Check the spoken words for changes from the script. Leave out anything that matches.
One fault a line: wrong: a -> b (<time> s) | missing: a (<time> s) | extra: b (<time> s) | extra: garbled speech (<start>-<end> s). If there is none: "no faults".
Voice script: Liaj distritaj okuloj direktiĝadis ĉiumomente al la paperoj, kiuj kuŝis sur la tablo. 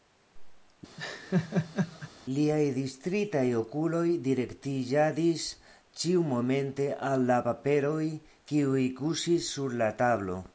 no faults